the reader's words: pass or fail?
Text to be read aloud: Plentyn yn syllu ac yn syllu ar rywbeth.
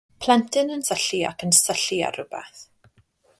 pass